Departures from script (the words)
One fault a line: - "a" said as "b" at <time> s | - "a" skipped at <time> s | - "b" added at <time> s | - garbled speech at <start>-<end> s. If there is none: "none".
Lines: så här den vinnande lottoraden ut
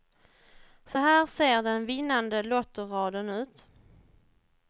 - "ser" added at 1.3 s